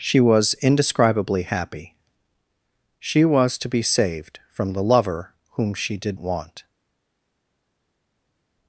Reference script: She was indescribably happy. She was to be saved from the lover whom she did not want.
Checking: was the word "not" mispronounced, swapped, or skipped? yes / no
yes